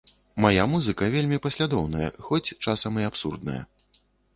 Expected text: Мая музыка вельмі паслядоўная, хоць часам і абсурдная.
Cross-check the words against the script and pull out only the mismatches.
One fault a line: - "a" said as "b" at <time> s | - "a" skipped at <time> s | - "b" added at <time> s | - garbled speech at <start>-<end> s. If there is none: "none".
none